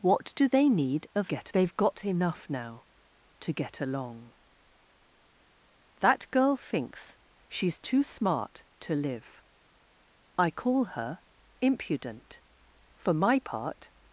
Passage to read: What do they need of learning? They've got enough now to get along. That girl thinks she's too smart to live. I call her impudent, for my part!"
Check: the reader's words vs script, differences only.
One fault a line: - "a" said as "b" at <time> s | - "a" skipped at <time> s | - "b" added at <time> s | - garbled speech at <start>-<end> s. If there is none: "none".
- "learning" said as "get" at 1.3 s